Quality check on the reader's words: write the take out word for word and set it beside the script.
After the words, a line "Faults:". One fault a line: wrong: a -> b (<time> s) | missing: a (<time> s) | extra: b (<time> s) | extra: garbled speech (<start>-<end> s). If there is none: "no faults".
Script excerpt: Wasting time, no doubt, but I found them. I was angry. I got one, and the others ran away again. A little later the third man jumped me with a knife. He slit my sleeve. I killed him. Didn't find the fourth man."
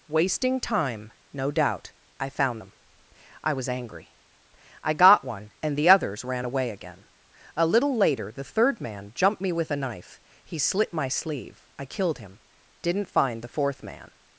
Wasting time, no doubt, I found them. I was angry. I got one, and the others ran away again. A little later the third man jumped me with a knife. He slit my sleeve. I killed him. Didn't find the fourth man."
Faults:
missing: but (1.9 s)